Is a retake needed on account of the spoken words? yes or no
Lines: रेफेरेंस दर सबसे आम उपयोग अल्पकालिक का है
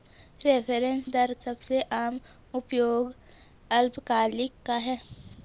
no